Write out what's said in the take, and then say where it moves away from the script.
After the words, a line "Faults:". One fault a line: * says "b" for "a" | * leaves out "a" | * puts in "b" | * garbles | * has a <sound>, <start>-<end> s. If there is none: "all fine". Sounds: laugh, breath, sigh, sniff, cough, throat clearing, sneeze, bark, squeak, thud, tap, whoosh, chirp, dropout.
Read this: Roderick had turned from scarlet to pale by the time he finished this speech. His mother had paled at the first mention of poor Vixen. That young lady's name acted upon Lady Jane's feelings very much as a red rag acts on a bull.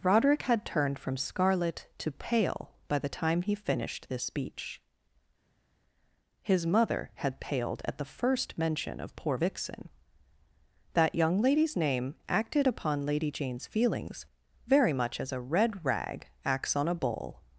Roderick had turned from scarlet to pale by the time he finished this speech. His mother had paled at the first mention of poor Vixen. That young lady's name acted upon Lady Jane's feelings very much as a red rag acts on a bull.
Faults:
all fine